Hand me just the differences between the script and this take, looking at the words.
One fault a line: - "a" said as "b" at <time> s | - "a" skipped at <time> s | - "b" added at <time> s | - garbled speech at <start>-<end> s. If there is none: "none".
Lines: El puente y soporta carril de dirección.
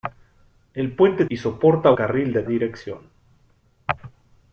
none